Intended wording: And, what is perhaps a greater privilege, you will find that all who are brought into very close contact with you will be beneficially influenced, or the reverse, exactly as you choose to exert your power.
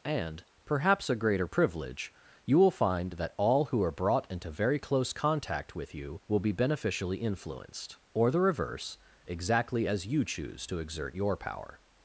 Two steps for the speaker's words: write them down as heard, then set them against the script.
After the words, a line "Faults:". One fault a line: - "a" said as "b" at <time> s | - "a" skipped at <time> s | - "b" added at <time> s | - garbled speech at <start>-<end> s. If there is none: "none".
And, perhaps a greater privilege, you will find that all who are brought into very close contact with you will be beneficially influenced, or the reverse, exactly as you choose to exert your power.
Faults:
- "what is" skipped at 0.4 s